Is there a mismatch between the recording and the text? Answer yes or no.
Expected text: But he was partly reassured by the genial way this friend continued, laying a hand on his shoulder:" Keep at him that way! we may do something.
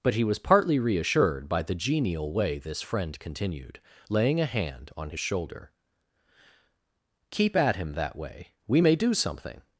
no